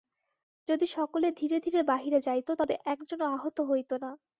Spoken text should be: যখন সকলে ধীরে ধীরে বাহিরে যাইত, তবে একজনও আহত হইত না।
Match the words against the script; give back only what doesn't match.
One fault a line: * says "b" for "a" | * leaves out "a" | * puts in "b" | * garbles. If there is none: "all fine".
* says "যদি" for "যখন"